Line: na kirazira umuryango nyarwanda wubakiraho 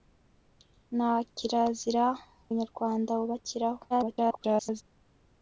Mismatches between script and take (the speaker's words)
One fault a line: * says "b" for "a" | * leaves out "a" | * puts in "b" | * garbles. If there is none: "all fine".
* leaves out "umuryango"
* garbles